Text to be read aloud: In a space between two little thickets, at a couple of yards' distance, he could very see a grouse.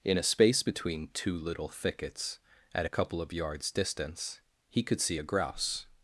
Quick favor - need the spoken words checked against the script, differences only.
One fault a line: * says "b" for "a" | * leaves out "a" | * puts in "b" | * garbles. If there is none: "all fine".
* leaves out "very"